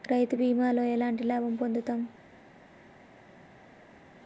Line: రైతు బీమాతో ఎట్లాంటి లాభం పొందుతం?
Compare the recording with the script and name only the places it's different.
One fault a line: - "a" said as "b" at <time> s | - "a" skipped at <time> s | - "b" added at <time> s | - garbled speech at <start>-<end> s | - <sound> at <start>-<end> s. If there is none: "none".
none